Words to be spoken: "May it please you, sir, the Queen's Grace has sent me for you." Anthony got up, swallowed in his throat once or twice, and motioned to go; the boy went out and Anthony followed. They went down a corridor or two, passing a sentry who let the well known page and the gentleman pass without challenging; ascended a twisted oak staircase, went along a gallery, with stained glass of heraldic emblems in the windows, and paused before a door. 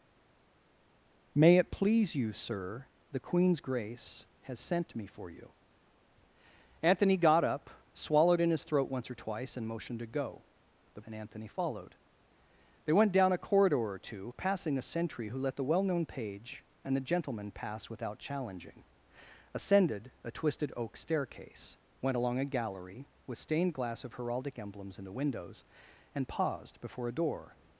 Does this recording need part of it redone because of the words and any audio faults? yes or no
yes